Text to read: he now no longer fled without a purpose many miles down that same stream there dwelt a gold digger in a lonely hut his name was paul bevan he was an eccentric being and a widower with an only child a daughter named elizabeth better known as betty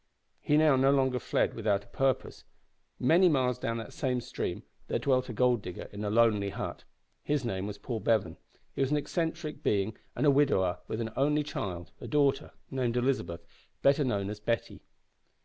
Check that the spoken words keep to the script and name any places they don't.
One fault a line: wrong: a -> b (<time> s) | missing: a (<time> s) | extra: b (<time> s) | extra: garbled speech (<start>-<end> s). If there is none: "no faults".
no faults